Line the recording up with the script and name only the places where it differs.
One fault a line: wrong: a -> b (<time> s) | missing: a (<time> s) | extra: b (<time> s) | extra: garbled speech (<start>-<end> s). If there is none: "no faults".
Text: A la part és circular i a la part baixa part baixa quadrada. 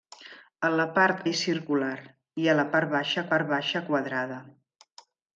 no faults